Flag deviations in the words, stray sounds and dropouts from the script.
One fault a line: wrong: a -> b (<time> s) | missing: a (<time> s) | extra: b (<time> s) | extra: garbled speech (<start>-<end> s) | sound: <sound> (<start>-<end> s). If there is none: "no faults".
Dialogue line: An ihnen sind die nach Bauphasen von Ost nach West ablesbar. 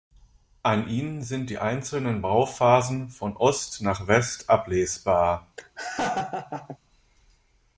wrong: nach -> einzelnen (1.6 s)
sound: laugh (5.6-6.8 s)